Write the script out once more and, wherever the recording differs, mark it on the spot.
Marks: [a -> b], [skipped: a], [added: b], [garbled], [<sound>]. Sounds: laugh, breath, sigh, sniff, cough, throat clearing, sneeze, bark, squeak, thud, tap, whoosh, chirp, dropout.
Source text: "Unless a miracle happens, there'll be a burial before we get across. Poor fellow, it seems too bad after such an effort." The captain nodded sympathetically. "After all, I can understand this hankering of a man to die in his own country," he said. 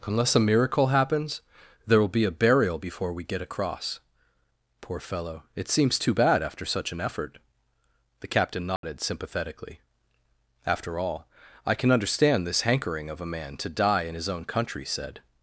"Unless a miracle happens, there'll be a burial before we get across. Poor fellow, it seems too bad after such an effort." The captain nodded [dropout] sympathetically. "After all, I can understand this hankering of a man to die in his own country," [skipped: he] said.